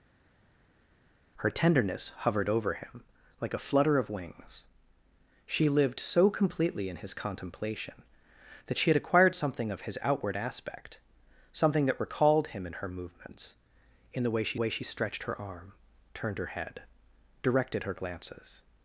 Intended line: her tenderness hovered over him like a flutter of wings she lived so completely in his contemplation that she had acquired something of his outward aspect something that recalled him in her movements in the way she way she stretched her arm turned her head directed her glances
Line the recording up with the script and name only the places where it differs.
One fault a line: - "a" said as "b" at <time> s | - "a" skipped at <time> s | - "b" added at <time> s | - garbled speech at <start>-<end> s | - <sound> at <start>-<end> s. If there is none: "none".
none